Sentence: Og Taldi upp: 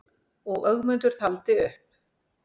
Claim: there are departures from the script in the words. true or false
true